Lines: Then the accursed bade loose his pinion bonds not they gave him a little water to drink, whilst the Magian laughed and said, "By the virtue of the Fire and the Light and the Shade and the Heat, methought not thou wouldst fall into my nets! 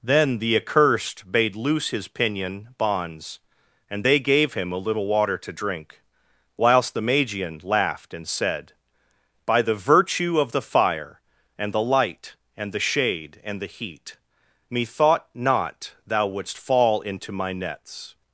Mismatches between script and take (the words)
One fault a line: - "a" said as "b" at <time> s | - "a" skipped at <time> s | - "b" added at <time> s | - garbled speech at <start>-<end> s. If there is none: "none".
- "not" said as "and" at 3.9 s